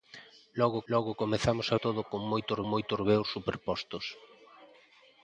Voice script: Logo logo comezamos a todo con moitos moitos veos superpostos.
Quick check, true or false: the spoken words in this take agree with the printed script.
true